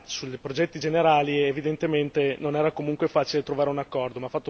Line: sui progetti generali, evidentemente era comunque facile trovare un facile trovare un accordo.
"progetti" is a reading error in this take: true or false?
false